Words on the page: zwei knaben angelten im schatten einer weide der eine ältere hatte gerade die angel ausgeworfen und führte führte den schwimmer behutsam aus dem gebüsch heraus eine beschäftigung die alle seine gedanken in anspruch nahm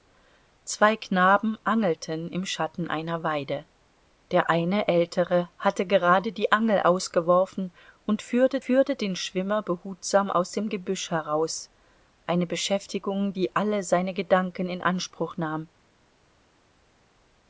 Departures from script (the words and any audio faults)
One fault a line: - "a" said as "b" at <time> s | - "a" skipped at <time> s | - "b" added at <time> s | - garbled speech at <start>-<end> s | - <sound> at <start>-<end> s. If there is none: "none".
none